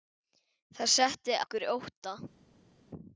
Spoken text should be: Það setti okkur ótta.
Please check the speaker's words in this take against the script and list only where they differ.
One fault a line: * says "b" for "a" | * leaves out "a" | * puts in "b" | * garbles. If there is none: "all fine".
all fine